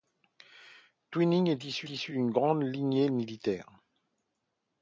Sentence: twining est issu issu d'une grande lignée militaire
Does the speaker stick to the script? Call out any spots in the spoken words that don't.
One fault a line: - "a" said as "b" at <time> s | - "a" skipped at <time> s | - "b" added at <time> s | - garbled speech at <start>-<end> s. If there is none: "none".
none